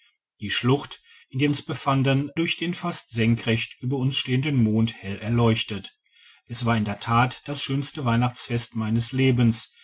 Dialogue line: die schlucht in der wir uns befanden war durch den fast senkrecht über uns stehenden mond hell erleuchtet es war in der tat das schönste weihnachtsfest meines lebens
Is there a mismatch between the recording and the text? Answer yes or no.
yes